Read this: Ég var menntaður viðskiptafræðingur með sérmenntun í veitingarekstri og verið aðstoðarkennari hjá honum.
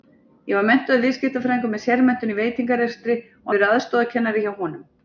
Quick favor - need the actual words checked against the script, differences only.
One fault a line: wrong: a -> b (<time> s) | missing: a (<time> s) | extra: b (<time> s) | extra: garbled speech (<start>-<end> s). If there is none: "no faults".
no faults